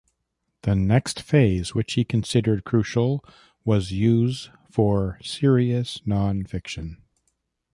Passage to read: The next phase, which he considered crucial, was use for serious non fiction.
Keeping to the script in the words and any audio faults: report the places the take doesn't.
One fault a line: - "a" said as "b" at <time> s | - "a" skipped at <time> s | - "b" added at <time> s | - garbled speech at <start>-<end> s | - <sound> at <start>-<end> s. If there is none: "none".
none